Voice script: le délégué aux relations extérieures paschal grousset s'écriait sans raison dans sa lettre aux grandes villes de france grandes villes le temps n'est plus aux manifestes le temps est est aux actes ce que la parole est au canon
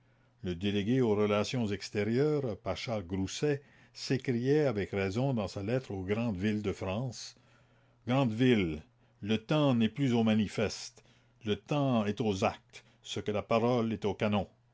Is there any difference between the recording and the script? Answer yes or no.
yes